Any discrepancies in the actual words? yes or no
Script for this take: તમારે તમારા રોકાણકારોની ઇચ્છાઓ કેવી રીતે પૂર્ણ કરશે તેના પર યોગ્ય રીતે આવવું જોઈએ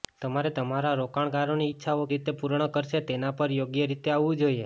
yes